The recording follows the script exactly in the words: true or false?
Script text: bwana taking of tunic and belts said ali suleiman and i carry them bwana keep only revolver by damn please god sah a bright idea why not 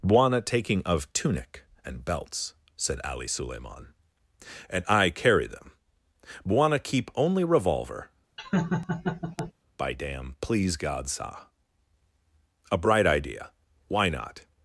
true